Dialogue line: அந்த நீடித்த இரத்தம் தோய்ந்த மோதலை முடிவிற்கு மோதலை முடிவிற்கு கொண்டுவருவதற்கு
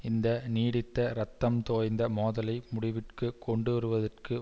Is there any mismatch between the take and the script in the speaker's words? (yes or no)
yes